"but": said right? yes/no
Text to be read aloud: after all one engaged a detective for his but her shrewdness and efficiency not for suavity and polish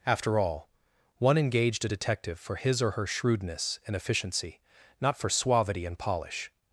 no